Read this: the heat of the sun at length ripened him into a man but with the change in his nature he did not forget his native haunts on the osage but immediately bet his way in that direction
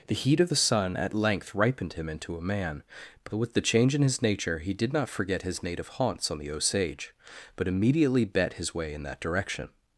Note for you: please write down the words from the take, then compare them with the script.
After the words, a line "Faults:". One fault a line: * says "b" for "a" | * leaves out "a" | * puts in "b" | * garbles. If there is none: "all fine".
the heat of the sun at length ripened him into a man but with the change in his nature he did not forget his native haunts on the osage but immediately bet his way in that direction
Faults:
all fine